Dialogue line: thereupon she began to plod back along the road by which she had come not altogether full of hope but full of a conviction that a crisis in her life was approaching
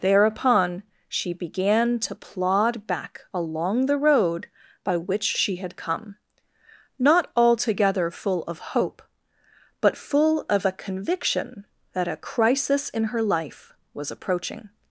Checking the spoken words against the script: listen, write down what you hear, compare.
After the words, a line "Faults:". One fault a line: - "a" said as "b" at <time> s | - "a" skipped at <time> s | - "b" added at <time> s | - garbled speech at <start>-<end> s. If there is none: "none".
thereupon she began to plod back along the road by which she had come not altogether full of hope but full of a conviction that a crisis in her life was approaching
Faults:
none